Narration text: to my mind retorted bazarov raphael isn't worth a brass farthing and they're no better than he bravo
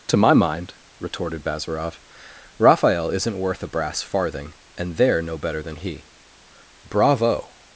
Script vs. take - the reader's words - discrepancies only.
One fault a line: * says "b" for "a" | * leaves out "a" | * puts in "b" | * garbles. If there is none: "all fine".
all fine